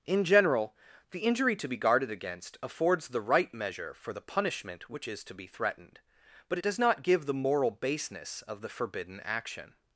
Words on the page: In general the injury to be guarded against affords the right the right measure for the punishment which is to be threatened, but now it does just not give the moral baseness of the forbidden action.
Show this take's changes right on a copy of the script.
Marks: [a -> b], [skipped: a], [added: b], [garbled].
In general the injury to be guarded against affords the right [skipped: the right] measure for the punishment which is to be threatened, but [skipped: now] it does [skipped: just] not give the moral baseness of the forbidden action.